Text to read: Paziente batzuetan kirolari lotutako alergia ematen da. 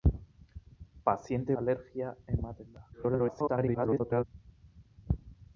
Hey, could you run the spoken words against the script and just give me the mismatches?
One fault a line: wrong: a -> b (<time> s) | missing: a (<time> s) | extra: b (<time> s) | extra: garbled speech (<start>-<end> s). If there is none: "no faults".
missing: batzuetan kirolari lotutako (1.6 s)
extra: garbled speech (2.9-4.2 s)